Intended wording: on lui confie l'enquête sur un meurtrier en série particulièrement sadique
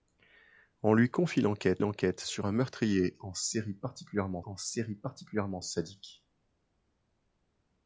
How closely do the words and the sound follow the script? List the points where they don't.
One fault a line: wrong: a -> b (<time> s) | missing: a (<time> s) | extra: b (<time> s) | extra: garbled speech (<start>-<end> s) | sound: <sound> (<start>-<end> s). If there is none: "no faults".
extra: l'enquête (1.8 s)
extra: en série particulièrement (4.4 s)